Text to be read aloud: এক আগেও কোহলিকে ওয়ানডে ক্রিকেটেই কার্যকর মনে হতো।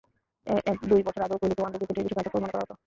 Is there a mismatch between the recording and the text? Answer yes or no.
yes